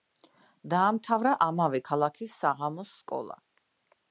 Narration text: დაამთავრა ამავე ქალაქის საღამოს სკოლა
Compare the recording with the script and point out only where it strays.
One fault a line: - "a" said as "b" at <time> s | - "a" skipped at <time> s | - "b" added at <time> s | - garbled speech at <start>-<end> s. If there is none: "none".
none